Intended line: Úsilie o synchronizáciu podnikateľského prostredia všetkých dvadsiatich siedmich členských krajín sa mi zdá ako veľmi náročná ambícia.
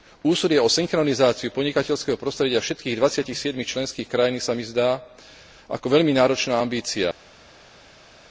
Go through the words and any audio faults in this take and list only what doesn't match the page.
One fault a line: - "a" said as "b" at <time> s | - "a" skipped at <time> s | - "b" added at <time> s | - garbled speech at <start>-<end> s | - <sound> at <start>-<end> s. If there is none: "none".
none